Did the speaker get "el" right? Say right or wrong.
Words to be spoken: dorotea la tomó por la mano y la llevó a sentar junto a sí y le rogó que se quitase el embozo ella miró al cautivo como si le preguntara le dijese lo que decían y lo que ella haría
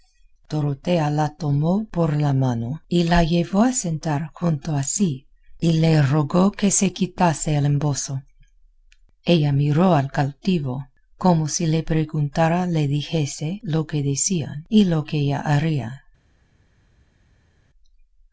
right